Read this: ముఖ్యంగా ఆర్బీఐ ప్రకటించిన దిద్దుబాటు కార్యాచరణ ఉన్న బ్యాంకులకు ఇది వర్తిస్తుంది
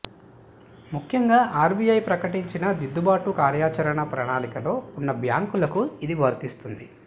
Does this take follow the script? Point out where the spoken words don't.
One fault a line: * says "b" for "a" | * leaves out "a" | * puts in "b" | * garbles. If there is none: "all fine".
* puts in "ప్రణాళికలో"